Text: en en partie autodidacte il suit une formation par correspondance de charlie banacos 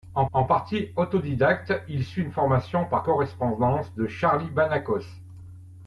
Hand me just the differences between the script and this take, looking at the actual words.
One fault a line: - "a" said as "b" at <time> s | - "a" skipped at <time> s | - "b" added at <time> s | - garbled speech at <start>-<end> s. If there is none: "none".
none